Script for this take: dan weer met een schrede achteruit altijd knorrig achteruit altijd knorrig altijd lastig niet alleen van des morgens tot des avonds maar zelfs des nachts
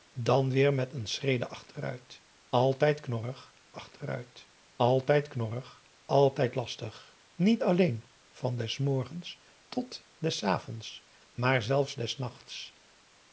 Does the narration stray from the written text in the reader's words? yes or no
no